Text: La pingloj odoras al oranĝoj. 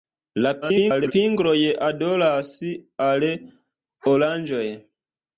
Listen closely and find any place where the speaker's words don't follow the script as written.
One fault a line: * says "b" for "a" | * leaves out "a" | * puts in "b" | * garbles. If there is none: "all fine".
* garbles